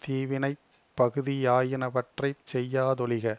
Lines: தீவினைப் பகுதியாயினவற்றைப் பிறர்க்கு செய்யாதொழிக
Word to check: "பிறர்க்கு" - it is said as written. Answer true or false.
false